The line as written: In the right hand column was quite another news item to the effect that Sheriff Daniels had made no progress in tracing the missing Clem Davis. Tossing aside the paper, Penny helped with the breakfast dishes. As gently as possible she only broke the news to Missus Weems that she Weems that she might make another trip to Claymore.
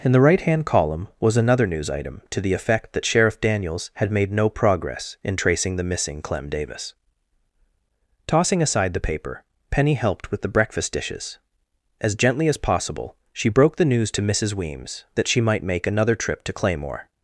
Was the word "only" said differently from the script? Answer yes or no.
yes